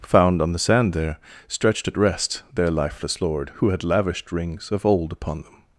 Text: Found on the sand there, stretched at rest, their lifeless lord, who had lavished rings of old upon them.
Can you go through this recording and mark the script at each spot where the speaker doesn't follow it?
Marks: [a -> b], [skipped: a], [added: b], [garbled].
Found on the sand there, stretched at rest, their lifeless lord, who had lavished rings of old upon them.